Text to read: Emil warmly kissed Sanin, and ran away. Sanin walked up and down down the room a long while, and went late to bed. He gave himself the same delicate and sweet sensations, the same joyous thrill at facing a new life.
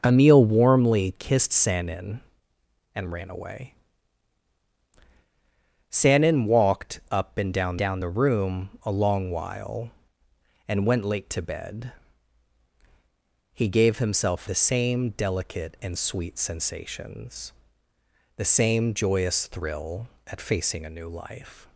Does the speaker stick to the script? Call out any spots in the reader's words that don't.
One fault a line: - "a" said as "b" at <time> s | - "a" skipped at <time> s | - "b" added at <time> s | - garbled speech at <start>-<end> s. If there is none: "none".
none